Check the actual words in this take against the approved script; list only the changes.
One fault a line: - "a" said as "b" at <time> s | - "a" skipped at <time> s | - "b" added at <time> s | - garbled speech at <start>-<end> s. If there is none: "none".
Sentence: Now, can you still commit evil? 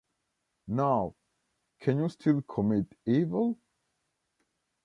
none